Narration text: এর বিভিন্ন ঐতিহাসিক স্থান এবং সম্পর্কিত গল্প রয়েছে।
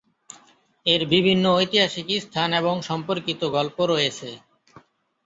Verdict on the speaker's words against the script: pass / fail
pass